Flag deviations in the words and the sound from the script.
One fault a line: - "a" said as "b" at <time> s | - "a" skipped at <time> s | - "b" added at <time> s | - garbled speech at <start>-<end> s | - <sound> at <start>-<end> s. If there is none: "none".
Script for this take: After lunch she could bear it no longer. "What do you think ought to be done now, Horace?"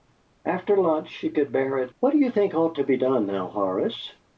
- "no longer" skipped at 1.9 s